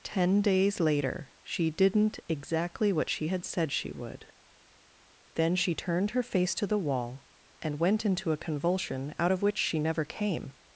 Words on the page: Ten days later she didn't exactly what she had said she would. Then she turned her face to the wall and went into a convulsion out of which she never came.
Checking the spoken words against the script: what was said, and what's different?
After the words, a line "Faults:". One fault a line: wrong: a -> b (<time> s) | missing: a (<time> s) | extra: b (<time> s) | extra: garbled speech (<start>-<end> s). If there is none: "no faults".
Ten days later she didn't exactly what she had said she would. Then she turned her face to the wall and went into a convulsion out of which she never came.
Faults:
no faults